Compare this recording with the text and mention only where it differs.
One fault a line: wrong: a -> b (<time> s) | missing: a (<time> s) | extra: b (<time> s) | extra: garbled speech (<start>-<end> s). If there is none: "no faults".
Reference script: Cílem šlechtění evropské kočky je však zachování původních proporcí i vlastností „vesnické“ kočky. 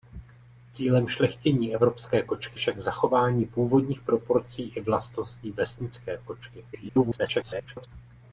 missing: je (2.6 s)
extra: garbled speech (6.7-7.9 s)